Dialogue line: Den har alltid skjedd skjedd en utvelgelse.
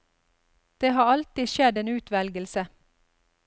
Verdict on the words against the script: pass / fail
fail